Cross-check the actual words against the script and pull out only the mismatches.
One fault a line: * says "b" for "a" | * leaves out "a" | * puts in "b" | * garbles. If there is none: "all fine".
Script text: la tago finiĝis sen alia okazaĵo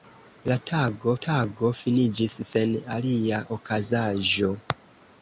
* puts in "tago"